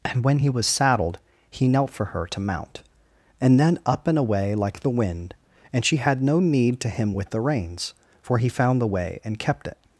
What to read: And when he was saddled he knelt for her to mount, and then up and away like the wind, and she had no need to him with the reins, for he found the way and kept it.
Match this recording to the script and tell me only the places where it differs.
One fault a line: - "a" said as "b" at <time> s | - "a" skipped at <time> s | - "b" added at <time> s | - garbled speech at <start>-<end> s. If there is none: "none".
none